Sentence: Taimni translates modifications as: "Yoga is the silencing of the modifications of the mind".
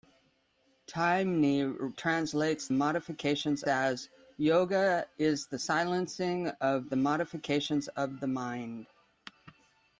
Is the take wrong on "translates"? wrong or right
right